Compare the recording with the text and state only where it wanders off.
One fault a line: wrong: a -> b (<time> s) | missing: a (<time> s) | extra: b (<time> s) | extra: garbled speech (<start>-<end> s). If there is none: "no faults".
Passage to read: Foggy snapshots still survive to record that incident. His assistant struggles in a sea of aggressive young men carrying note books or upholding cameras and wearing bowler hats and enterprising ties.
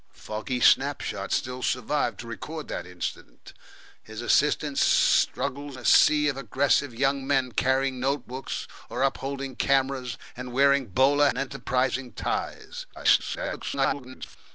missing: in (5.8 s)
missing: hats (11.3 s)
extra: garbled speech (12.9-14.4 s)